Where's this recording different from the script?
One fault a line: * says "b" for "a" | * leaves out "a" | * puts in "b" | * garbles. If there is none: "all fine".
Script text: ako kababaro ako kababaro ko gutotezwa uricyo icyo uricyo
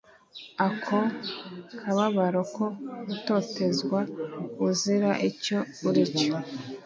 * leaves out "ako kababaro"
* says "uzira" for "uricyo"